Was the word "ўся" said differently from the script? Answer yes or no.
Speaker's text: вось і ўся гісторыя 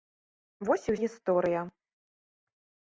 yes